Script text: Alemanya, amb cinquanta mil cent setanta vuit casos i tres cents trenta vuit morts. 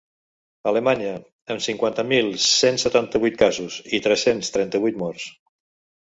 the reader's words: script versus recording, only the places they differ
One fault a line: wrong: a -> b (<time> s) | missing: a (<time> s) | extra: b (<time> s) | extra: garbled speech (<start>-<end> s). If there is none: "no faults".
no faults